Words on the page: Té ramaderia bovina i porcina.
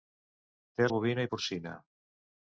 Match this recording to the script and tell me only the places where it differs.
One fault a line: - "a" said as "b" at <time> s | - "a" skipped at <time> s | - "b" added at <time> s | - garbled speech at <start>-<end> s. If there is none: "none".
- "ramaderia" skipped at 0.9 s